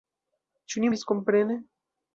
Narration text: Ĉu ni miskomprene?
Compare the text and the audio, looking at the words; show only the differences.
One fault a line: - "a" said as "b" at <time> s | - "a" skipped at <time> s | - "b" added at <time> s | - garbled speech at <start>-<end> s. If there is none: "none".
none